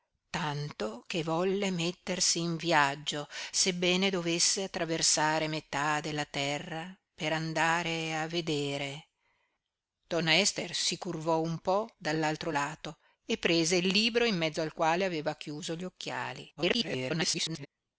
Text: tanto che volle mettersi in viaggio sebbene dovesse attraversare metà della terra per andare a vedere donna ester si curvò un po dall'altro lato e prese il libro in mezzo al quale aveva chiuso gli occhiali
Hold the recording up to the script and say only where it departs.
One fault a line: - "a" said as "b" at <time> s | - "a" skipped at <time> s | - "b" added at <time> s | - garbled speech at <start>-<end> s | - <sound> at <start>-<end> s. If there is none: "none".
- garbled speech at 16.6-17.7 s